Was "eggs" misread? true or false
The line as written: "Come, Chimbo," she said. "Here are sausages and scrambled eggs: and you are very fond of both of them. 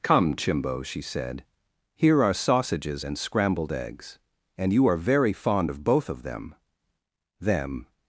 false